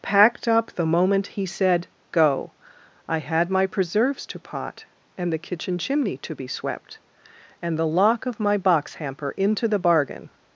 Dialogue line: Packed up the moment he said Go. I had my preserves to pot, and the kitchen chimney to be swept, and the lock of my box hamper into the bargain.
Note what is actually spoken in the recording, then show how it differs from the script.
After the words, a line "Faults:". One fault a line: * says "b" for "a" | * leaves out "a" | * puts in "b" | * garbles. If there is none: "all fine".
Packed up the moment he said Go. I had my preserves to pot, and the kitchen chimney to be swept, and the lock of my box hamper into the bargain.
Faults:
all fine